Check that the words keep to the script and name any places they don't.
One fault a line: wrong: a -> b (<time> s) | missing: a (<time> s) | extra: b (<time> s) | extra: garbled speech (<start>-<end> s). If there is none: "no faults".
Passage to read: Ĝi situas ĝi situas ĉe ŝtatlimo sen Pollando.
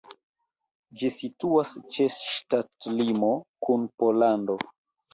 missing: ĝi situas (1.8 s)
wrong: sen -> kun (3.7 s)